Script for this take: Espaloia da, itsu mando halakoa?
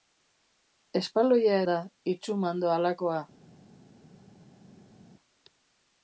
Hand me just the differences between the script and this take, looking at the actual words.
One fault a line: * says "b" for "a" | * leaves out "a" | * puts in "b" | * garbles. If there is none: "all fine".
all fine